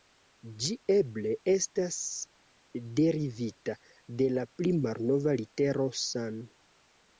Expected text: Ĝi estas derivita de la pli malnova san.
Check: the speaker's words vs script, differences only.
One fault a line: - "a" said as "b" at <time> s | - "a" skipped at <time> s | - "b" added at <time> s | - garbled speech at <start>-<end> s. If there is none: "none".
- "eble" added at 0.9 s
- "litero" added at 5.5 s